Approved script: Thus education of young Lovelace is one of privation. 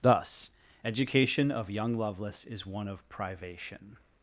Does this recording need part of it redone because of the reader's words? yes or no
no